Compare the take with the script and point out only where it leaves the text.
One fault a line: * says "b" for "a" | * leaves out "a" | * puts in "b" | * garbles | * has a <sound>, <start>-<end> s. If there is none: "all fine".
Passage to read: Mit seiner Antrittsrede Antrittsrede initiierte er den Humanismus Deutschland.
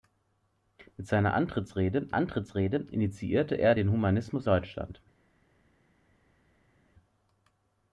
all fine